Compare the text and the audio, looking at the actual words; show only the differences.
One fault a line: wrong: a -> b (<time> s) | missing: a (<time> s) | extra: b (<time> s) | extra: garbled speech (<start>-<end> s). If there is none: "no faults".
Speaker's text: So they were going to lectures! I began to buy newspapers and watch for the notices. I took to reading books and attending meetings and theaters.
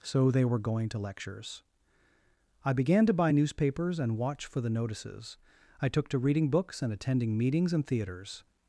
no faults